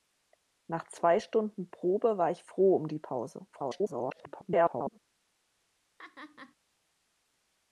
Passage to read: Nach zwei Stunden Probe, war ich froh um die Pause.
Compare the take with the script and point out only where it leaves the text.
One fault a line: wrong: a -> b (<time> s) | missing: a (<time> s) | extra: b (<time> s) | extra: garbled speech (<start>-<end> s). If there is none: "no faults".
extra: garbled speech (3.5-5.0 s)